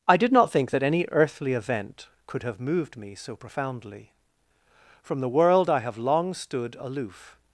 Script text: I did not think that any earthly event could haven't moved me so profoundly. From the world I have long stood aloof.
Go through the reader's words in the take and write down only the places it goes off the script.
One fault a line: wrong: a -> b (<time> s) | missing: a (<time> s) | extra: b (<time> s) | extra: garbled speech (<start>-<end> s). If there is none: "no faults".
wrong: haven't -> have (2.4 s)